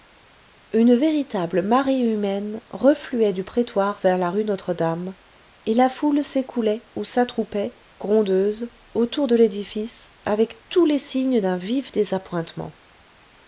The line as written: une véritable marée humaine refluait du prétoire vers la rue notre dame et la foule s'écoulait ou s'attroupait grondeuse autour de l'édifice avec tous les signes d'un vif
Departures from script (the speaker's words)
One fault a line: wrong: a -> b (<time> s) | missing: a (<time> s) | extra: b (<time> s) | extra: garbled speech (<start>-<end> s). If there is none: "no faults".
no faults